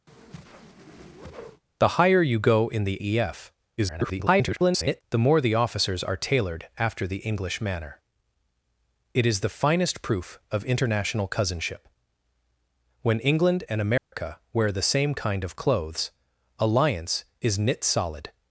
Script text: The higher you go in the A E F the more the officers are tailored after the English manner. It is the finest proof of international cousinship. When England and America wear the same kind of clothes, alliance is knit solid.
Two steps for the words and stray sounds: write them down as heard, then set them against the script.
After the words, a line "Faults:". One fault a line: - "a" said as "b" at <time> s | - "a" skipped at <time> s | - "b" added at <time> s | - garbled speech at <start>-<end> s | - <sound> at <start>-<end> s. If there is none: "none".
The higher you go in the E F [garbled] the more the officers are tailored after the English manner. It is the finest proof of international cousinship. When England and America wear the same kind of clothes, alliance is knit solid.
Faults:
- whoosh at 0.1-1.6 s
- "A" skipped at 3.0 s
- garbled speech at 3.8-5.0 s
- dropout at 14.0-14.1 s